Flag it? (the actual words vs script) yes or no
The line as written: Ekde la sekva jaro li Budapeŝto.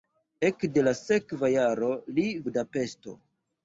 no